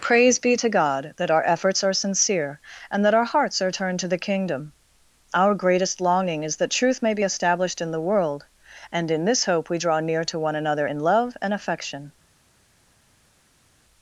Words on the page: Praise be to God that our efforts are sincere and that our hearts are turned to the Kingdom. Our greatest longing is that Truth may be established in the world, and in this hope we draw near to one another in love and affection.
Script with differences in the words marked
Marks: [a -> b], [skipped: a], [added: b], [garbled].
Praise be to God that our efforts are sincere and that our hearts are turned to the Kingdom. Our greatest longing is that Truth may be established in the world, and in this hope we draw near to one another in love and affection.